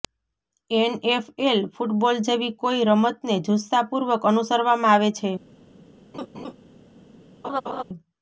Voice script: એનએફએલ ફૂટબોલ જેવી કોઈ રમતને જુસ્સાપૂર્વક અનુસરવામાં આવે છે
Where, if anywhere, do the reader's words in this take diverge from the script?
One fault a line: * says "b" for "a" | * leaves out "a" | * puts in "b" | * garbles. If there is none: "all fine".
all fine